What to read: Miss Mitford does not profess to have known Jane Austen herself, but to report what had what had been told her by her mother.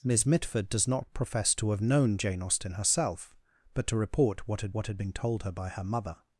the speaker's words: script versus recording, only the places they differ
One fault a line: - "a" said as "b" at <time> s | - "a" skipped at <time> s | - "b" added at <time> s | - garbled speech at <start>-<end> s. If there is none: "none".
none